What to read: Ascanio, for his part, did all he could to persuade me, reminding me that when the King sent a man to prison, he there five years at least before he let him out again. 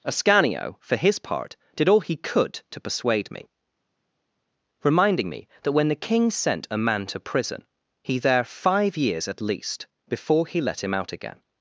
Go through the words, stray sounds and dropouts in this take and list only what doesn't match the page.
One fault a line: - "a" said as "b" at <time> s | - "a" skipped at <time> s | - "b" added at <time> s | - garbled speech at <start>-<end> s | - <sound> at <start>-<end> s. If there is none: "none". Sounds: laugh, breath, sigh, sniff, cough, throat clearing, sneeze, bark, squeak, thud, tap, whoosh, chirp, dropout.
none